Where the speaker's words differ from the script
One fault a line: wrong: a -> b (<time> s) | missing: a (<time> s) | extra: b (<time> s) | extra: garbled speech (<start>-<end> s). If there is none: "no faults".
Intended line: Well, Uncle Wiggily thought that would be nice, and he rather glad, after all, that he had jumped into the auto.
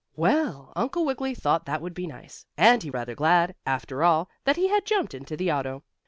no faults